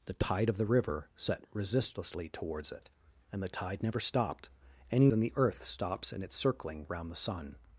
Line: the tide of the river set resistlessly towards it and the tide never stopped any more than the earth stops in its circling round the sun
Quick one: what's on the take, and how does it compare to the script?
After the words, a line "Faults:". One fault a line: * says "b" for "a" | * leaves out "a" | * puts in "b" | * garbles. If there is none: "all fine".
the tide of the river set resistlessly towards it and the tide never stopped any than the earth stops in its circling round the sun
Faults:
* leaves out "more"